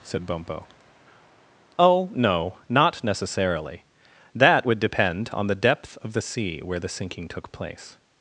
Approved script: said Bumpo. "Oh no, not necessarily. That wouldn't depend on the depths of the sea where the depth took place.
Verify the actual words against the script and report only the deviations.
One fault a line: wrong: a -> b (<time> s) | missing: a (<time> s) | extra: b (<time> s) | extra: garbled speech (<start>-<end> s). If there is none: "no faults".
wrong: wouldn't -> would (4.6 s)
wrong: depths -> depth (5.5 s)
wrong: depth -> sinking (6.9 s)